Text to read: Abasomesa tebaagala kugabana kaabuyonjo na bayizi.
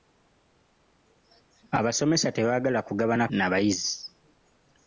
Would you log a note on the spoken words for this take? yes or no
yes